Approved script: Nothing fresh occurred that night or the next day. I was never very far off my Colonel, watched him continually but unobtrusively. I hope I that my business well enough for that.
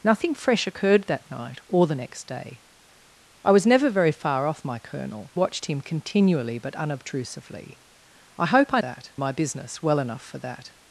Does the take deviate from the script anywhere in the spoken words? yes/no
no